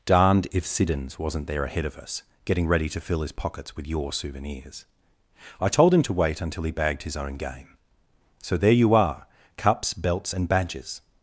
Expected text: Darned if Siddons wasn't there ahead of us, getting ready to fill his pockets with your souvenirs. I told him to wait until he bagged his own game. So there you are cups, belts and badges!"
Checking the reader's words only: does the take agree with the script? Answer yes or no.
yes